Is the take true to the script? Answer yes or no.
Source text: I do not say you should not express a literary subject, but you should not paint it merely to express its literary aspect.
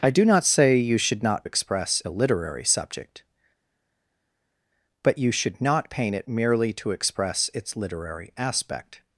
yes